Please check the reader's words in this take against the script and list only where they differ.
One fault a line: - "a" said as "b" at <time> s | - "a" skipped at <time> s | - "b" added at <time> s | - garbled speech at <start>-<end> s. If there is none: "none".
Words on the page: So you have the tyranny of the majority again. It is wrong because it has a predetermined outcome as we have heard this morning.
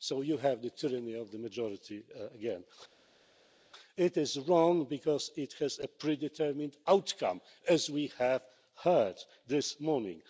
none